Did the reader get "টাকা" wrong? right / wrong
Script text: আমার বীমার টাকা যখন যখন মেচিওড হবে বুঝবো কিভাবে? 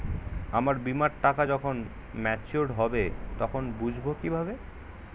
right